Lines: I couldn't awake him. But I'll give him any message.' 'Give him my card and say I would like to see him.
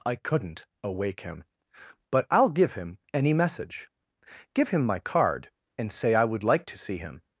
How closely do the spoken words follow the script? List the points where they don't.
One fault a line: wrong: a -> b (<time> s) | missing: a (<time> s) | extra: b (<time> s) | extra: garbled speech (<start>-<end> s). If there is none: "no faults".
no faults